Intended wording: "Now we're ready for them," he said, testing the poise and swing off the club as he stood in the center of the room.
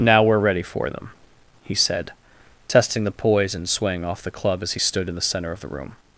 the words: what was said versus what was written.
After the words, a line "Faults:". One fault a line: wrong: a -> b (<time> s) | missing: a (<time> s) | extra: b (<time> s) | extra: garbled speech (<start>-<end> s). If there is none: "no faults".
"Now we're ready for them," he said, testing the poise and swing off the club as he stood in the center of the room.
Faults:
no faults